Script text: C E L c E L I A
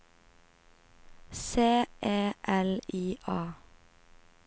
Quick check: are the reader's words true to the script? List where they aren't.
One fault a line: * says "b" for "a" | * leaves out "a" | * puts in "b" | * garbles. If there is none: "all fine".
* leaves out "c E L"